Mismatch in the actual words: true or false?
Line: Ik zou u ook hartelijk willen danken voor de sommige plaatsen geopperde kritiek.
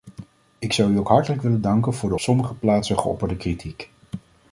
false